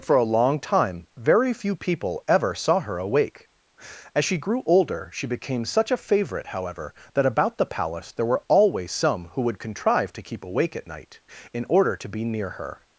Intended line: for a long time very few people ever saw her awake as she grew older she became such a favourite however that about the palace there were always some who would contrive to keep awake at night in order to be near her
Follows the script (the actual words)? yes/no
yes